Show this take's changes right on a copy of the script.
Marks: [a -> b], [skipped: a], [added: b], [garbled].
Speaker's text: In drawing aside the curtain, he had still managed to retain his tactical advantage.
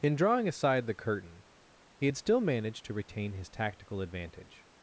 In drawing aside the curtain, he had still managed to retain his tactical advantage.